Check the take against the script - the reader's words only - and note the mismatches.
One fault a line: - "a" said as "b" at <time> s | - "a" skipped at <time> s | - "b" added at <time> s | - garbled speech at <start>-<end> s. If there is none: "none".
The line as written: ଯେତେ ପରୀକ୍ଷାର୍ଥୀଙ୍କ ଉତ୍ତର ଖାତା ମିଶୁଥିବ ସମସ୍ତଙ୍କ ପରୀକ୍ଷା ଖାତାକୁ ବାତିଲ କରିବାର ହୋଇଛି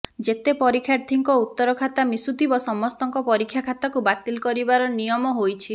- "ନିୟମ" added at 5.0 s